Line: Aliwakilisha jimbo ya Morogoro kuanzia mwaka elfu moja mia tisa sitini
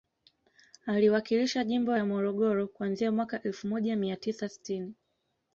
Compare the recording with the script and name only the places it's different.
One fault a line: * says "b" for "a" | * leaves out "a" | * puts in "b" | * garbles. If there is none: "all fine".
all fine